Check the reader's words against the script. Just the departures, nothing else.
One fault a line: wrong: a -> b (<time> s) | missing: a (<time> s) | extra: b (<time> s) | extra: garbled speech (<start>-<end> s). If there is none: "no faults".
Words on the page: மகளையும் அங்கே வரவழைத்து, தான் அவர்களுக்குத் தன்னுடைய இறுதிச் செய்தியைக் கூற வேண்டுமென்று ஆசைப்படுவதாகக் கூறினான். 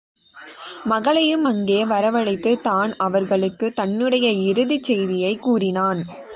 missing: கூற வேண்டுமென்று ஆசைப்படுவதாகக் (5.4 s)